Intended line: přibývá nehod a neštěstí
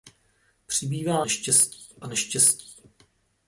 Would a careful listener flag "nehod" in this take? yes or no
yes